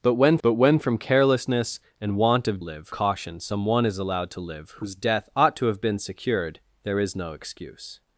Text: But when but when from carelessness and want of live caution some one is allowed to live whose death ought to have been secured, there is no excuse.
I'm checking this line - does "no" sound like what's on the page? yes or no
yes